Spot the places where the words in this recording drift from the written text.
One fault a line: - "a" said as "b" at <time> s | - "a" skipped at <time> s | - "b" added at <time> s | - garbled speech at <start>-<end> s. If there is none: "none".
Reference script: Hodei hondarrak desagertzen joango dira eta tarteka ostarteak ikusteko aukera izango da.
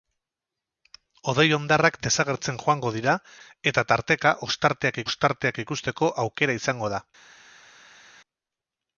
- "ostarteak" added at 5.1 s